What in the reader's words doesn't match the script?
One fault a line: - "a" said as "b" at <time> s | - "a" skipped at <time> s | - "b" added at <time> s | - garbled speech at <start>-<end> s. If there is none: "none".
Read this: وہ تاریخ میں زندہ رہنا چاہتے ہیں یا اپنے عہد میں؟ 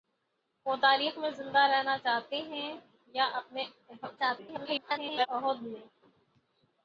- garbled speech at 4.2-5.3 s